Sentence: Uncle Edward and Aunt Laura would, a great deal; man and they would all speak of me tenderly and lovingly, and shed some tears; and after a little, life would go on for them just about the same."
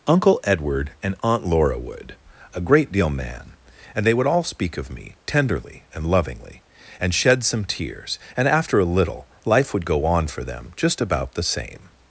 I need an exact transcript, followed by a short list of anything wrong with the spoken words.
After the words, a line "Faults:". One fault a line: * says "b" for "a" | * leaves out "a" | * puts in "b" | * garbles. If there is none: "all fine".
Uncle Edward and Aunt Laura would, a great deal; man and they would all speak of me tenderly and lovingly, and shed some tears; and after a little, life would go on for them just about the same."
Faults:
all fine